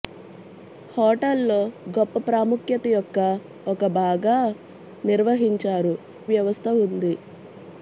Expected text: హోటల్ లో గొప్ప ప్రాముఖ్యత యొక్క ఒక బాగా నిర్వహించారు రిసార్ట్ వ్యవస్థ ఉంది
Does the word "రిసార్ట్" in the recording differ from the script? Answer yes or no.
yes